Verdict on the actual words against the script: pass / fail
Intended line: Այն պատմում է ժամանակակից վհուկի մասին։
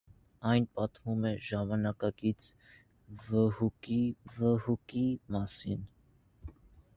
fail